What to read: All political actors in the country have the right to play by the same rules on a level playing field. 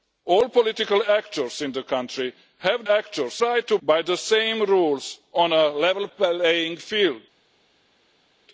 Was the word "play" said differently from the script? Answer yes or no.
yes